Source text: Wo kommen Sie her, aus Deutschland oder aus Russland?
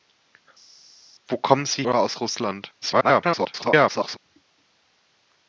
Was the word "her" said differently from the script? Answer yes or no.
yes